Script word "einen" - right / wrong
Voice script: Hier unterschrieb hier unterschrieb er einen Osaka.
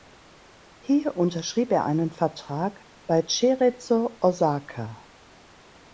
wrong